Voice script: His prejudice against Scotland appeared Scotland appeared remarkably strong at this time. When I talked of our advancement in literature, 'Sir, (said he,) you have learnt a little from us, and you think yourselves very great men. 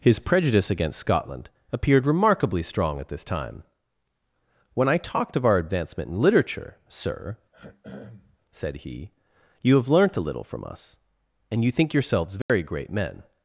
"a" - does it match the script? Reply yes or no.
yes